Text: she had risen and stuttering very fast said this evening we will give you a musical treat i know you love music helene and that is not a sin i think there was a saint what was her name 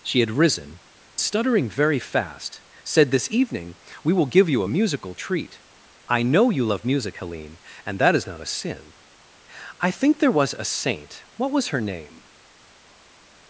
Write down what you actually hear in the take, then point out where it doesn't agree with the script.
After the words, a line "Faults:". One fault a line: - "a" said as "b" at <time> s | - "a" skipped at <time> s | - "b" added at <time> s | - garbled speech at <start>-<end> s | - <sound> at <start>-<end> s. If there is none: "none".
she had risen stuttering very fast said this evening we will give you a musical treat i know you love music helene and that is not a sin i think there was a saint what was her name
Faults:
- "and" skipped at 0.8 s